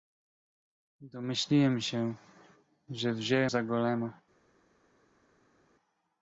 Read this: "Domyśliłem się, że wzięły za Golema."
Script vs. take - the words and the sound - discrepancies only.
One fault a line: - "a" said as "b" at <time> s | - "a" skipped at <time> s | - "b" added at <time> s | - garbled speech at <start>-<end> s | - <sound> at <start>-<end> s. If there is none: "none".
none